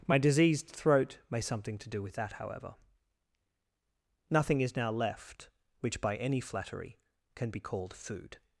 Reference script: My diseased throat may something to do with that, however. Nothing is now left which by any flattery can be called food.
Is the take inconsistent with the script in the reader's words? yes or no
no